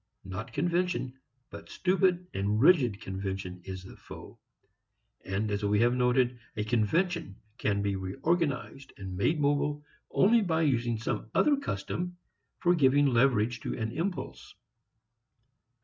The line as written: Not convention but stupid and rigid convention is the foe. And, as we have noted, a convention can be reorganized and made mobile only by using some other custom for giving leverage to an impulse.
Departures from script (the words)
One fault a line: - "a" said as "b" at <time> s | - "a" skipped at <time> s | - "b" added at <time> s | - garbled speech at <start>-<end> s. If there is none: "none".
none